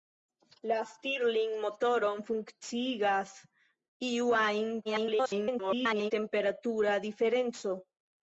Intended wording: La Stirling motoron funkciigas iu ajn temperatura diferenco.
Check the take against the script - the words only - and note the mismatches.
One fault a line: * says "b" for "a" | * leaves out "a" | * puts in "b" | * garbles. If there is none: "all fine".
* garbles